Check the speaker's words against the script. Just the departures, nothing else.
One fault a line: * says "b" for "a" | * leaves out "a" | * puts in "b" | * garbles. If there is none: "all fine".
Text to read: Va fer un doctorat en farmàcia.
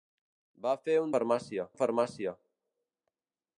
* says "farmàcia" for "doctorat"